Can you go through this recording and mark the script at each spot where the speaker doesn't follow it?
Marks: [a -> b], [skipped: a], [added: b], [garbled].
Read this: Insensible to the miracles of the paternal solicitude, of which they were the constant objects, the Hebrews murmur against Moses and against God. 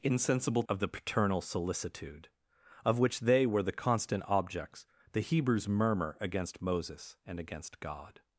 Insensible [skipped: to the miracles] of the paternal solicitude, of which they were the constant objects, the Hebrews murmur against Moses and against God.